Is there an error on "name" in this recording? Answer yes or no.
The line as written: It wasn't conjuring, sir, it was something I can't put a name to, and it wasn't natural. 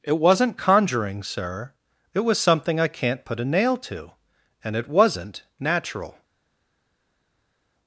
yes